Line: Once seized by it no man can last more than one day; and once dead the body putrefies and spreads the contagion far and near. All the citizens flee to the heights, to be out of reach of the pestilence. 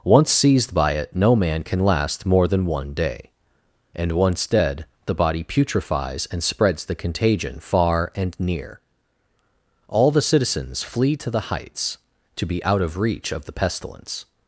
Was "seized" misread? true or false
false